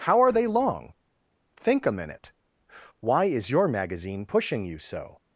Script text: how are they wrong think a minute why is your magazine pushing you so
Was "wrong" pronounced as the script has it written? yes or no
no